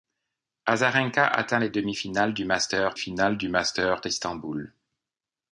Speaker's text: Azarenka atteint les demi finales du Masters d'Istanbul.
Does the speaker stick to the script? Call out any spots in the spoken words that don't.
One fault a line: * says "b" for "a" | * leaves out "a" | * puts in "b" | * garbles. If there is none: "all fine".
* puts in "finales du Masters"